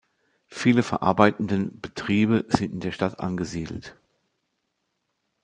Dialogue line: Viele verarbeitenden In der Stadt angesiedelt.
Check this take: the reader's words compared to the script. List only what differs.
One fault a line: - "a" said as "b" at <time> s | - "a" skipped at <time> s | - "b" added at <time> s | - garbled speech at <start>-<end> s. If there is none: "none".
- "Betriebe sind" added at 1.8 s